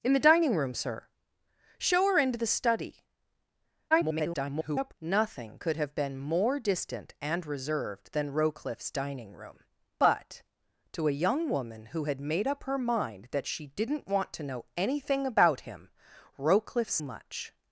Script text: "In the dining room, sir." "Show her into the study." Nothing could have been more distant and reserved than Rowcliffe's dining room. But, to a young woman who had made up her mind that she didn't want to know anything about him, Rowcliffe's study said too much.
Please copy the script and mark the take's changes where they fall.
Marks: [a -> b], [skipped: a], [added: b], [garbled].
"In the dining room, sir." "Show her into the study." [garbled] Nothing could have been more distant and reserved than Rowcliffe's dining room. But, to a young woman who had made up her mind that she didn't want to know anything about him, Rowcliffe's [skipped: study said too] much.